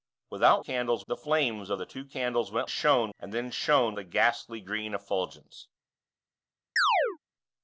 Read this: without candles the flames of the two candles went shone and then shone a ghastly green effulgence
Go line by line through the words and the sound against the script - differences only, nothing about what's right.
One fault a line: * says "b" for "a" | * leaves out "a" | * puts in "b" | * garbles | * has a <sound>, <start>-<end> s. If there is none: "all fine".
* has a chirp, 6.8-7.2 s